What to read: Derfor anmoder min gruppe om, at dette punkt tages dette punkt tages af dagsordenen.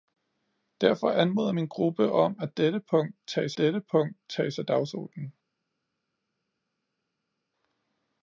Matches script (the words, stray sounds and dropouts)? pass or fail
pass